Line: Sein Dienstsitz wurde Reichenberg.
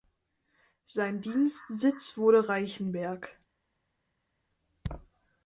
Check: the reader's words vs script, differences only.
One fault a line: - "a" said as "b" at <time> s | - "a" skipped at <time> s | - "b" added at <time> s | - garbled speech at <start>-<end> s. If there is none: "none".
none